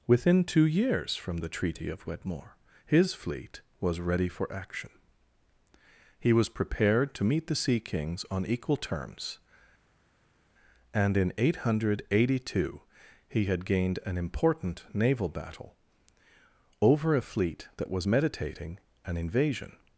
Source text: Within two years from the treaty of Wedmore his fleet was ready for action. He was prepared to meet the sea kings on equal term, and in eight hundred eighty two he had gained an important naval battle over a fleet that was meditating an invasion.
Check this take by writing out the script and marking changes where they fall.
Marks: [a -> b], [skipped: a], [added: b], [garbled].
Within two years from the treaty of Wedmore his fleet was ready for action. He was prepared to meet the sea kings on equal [term, -> terms] and in eight hundred eighty two he had gained an important naval battle over a fleet that was meditating an invasion.